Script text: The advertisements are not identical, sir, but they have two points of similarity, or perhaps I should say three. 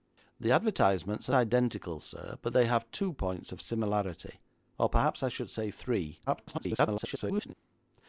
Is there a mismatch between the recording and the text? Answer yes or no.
yes